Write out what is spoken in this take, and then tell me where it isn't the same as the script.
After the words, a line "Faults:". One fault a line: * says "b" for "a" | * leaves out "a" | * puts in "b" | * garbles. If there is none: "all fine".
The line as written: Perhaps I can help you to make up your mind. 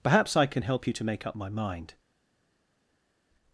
Perhaps I can help you to make up my mind.
Faults:
* says "my" for "your"